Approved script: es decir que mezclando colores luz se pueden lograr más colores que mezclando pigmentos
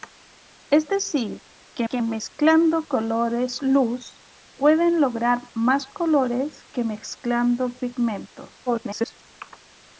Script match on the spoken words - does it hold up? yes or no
no